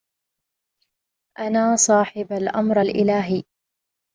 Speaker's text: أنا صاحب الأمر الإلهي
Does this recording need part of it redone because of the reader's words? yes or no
no